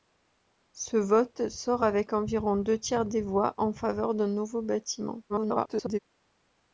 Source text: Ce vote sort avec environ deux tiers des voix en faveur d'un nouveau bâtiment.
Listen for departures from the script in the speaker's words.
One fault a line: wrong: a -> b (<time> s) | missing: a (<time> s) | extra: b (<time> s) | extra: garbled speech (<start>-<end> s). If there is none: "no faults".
extra: garbled speech (5.3-6.0 s)